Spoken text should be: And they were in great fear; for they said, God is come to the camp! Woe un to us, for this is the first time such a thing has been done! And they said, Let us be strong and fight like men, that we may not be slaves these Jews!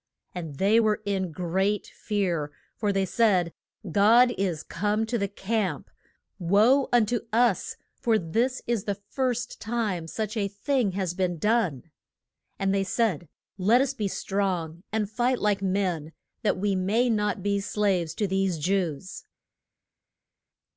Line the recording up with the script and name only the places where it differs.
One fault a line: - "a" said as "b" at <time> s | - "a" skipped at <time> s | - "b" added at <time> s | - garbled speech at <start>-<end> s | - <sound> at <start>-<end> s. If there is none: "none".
- "to" added at 18.1 s